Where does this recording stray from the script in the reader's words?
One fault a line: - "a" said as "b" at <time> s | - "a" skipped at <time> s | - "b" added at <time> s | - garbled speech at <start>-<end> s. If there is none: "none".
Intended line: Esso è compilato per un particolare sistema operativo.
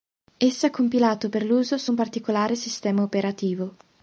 - "l'uso su" added at 1.4 s